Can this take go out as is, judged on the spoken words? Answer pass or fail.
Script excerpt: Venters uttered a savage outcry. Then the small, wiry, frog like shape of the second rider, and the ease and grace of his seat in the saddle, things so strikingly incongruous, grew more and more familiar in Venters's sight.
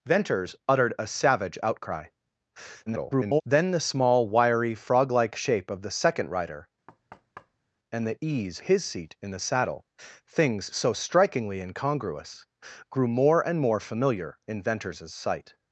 fail